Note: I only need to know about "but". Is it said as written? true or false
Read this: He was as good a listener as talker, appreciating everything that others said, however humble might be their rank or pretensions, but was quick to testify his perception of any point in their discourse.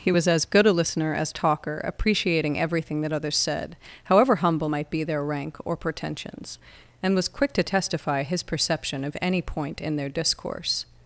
false